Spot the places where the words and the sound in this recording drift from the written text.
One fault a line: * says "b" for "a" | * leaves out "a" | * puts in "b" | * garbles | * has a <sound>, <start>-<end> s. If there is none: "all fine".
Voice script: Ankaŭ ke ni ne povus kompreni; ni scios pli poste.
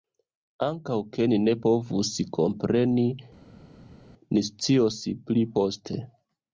all fine